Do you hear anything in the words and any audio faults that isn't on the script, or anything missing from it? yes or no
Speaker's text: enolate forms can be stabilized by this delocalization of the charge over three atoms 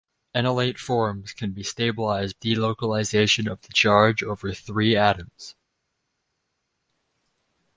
yes